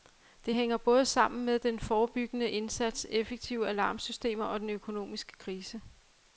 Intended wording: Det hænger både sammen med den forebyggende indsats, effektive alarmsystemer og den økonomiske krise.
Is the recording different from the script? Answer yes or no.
no